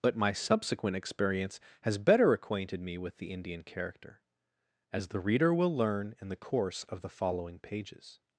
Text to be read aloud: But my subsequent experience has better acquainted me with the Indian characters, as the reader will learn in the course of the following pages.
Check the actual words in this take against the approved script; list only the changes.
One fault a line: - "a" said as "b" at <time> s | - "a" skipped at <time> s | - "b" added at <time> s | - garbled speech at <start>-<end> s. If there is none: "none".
- "characters" said as "character" at 3.6 s